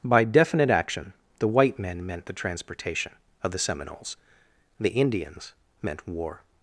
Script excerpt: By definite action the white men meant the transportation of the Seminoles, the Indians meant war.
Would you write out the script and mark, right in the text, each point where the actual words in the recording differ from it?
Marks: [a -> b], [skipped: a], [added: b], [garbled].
By definite action the white men meant the transportation of the Seminoles, the Indians meant war.